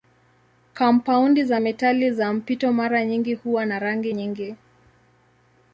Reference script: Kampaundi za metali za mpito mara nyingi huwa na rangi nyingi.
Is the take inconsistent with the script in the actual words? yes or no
no